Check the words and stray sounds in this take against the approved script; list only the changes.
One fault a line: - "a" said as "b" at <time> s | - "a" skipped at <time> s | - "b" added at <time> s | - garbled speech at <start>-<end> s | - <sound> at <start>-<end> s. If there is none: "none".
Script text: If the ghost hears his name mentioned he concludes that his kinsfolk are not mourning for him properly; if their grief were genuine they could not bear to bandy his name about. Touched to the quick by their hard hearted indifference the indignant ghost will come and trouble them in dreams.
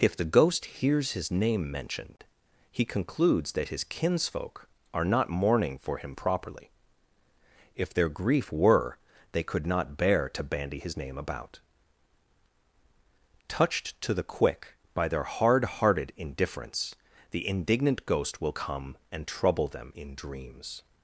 - "genuine" skipped at 9.0 s